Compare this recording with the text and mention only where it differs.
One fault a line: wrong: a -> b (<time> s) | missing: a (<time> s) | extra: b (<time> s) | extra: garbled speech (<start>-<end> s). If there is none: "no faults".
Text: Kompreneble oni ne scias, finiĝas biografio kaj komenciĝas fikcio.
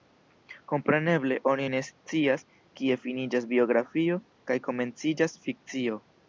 extra: kie (2.8 s)